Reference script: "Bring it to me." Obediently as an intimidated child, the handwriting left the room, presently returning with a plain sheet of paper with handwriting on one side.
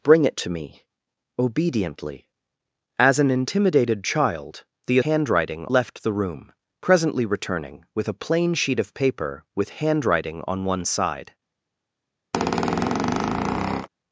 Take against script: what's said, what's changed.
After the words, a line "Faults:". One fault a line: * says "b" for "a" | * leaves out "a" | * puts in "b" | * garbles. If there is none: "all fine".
"Bring it to me." Obediently as an intimidated child, the handwriting left the room, presently returning with a plain sheet of paper with handwriting on one side.
Faults:
all fine